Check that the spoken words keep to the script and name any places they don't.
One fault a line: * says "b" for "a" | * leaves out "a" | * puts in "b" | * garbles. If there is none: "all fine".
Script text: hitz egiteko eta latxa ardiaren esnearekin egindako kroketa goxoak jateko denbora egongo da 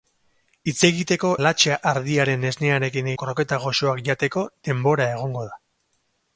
* leaves out "eta"
* leaves out "egindako"